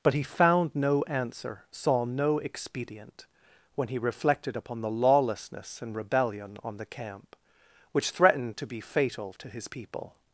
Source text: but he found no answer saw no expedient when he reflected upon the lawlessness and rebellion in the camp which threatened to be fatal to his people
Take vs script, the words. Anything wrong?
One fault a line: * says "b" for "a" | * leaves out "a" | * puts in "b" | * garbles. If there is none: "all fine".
* says "on" for "in"